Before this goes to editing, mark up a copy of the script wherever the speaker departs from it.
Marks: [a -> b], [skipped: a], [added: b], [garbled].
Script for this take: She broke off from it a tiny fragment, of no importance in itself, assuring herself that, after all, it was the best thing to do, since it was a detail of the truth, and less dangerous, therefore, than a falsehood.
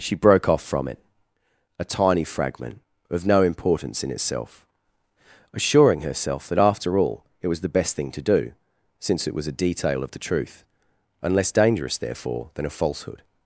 She broke off from it a tiny fragment, of no importance in itself, assuring herself that, after all, it was the best thing to do, since it was a detail of the truth, and less dangerous, therefore, than a falsehood.